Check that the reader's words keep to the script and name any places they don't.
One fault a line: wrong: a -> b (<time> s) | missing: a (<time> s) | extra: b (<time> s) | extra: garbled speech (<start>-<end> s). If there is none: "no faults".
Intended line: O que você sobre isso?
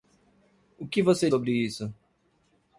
no faults